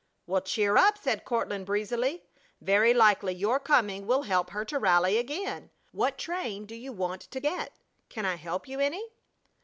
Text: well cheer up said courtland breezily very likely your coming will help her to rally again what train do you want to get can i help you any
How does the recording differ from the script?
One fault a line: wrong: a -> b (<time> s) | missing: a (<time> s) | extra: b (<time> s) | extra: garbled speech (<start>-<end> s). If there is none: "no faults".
no faults